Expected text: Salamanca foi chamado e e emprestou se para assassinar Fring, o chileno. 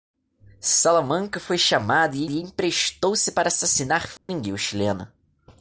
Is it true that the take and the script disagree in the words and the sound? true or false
true